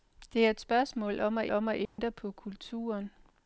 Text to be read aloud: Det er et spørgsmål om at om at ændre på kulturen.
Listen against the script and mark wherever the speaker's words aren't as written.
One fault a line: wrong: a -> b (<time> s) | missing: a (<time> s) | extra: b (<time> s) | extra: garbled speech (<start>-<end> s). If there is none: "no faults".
no faults